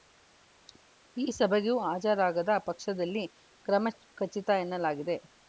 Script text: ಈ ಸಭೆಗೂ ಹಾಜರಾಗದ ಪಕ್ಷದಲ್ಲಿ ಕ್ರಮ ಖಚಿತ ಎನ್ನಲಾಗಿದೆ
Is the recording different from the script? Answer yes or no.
no